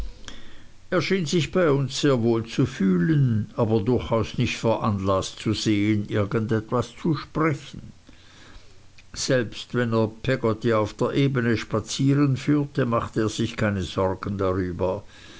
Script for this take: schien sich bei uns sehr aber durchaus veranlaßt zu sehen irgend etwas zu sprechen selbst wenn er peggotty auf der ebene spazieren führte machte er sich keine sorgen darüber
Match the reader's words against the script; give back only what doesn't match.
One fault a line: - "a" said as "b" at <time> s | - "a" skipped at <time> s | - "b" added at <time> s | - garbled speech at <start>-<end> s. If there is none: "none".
- "wohl zu fühlen" added at 2.2 s
- "nicht" added at 4.4 s